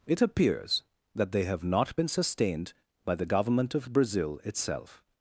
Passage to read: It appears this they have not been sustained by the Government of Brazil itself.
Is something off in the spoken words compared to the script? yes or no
yes